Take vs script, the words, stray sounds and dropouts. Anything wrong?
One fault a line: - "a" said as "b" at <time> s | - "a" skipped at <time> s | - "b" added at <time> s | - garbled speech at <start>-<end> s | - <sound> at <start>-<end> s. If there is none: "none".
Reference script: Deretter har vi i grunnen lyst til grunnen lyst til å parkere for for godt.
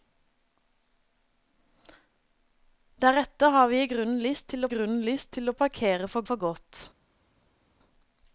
none